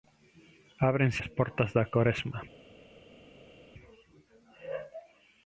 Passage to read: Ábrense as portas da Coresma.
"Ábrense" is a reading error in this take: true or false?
false